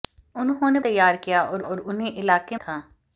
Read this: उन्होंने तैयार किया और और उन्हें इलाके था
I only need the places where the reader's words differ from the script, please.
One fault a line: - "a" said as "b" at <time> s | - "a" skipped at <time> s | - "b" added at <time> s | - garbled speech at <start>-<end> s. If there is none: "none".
none